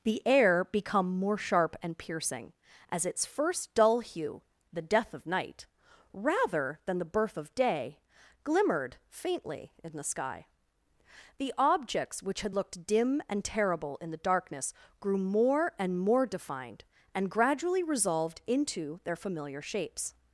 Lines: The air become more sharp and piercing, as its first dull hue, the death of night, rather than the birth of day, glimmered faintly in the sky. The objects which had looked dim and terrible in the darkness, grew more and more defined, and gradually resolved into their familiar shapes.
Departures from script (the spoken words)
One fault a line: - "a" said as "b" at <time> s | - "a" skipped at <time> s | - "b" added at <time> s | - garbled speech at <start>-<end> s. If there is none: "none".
none